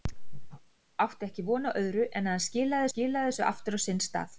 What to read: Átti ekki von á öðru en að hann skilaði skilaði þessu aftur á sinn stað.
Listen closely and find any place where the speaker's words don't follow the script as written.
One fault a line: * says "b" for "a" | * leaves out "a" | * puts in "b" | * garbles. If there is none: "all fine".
all fine